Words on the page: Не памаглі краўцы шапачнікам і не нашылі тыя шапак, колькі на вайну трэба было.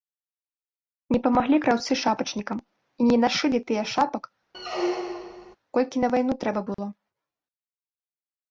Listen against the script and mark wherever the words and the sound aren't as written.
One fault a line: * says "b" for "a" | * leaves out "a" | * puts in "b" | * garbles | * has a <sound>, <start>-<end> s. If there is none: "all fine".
* has a squeak, 4.5-5.6 s
* has a dropout, 6.7-6.8 s